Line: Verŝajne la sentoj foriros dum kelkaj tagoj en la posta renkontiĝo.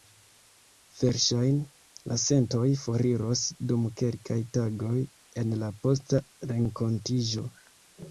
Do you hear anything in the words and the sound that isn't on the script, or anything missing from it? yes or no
no